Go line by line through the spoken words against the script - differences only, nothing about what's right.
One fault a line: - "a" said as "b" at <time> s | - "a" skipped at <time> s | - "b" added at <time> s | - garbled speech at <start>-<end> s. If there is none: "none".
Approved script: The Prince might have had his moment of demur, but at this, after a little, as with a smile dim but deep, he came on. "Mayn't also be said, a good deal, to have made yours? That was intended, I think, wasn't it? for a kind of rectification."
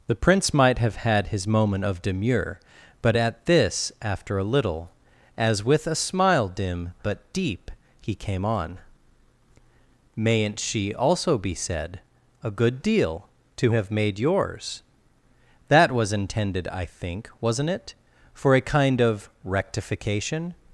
- "she" added at 10.6 s